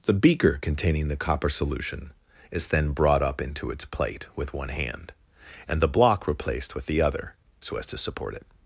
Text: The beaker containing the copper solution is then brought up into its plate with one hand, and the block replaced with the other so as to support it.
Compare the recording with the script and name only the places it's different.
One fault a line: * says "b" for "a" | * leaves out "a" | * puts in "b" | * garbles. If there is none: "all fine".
all fine